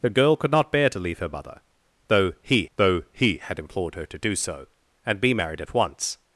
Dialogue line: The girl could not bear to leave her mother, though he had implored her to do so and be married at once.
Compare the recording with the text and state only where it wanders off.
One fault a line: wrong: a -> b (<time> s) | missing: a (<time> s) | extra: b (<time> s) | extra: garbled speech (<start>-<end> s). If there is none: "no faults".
extra: though he (2.8 s)